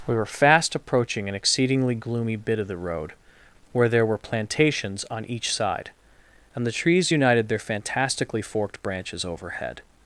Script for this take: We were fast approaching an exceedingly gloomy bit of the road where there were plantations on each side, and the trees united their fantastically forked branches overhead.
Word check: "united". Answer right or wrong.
right